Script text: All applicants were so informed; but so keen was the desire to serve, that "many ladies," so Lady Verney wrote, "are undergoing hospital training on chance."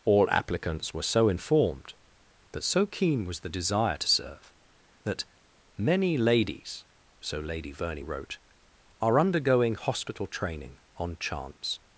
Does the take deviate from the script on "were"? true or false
false